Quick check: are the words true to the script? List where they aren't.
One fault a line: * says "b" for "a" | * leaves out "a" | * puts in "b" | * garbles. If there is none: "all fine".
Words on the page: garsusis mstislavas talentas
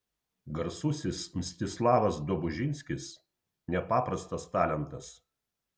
* puts in "dobužinskis nepaprastas"